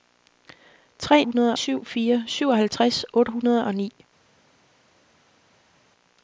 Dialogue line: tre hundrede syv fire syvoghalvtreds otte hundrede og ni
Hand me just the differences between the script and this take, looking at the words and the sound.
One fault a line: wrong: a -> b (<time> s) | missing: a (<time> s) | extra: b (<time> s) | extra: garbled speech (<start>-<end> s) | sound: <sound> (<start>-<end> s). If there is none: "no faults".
no faults